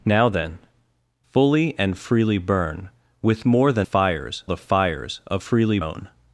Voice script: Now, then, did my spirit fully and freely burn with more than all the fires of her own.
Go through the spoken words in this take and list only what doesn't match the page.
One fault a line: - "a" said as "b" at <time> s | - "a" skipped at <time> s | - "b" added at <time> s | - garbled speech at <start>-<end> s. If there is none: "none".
- "did my spirit" skipped at 0.6 s
- "all" said as "fires" at 3.8 s
- "her" said as "freely" at 5.4 s